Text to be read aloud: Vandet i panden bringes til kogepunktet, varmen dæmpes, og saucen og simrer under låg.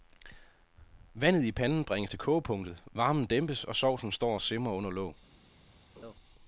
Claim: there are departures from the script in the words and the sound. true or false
true